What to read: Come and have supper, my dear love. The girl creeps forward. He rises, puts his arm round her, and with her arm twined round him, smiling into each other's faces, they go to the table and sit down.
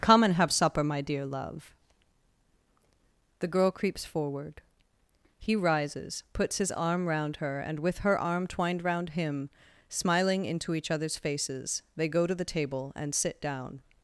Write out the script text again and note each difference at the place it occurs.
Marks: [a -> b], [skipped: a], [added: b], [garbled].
Come and have supper, my dear love. The girl creeps forward. He rises, puts his arm round her, and with her arm twined round him, smiling into each other's faces, they go to the table and sit down.